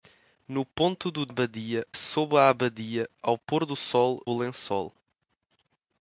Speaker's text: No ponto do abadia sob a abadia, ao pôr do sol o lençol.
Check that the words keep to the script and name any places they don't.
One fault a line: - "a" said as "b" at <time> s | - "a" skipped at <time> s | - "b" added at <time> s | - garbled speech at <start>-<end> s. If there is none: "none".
none